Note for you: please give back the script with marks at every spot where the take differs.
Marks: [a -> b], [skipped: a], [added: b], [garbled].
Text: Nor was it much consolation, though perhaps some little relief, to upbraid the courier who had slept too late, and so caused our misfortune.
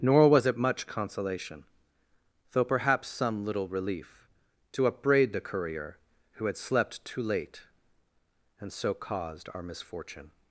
Nor was it much consolation, though perhaps some little relief, to upbraid the courier who had slept too late, and so caused our misfortune.